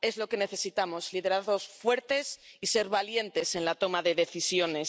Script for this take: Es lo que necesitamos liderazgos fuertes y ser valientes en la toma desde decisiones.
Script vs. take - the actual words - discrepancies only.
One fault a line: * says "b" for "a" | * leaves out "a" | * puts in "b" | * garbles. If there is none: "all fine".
* says "de" for "desde"